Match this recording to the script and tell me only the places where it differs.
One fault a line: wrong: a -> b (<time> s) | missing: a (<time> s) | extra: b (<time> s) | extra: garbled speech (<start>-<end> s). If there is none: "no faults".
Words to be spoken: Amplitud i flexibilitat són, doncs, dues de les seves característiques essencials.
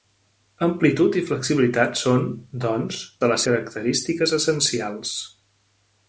missing: dues (3.0 s)
missing: seves (3.5 s)